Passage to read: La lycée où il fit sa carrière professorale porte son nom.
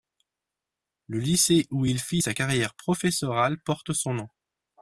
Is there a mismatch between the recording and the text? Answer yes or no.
yes